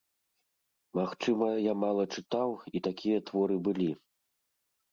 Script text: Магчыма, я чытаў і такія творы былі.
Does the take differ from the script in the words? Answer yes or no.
yes